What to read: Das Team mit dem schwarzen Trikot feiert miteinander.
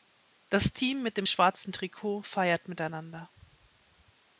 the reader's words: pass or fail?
pass